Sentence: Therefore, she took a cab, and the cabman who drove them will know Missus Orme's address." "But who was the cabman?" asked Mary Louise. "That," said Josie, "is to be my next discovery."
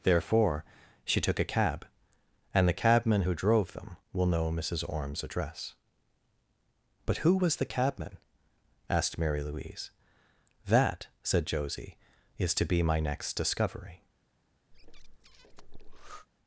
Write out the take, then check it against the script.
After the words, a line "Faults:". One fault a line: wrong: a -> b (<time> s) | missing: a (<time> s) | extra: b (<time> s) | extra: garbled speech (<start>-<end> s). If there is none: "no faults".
Therefore, she took a cab, and the cabman who drove them will know Missus Orme's address." "But who was the cabman?" asked Mary Louise. "That," said Josie, "is to be my next discovery."
Faults:
no faults